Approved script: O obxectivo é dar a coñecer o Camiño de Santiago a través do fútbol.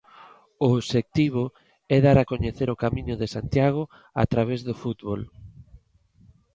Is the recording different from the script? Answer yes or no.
no